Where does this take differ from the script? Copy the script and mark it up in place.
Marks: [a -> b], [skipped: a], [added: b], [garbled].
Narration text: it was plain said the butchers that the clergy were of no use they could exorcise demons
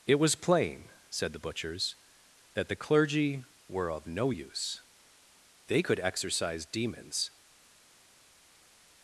it was plain said the butchers that the clergy were of no use they could exorcise demons